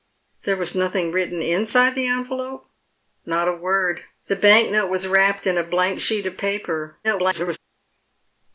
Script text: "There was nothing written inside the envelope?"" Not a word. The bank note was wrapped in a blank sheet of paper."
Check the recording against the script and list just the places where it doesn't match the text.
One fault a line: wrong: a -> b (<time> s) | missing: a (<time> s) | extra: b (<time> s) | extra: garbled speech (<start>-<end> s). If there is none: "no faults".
extra: garbled speech (7.0-7.6 s)